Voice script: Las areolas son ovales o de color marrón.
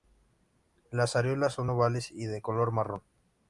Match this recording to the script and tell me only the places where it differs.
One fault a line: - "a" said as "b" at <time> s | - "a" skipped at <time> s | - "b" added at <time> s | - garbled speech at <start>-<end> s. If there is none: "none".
- "o" said as "y" at 2.1 s